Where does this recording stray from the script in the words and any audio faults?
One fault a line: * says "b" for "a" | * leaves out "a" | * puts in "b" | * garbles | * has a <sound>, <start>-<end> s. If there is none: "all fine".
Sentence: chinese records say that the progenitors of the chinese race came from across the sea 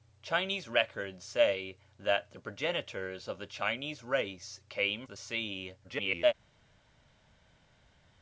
* leaves out "from across"
* garbles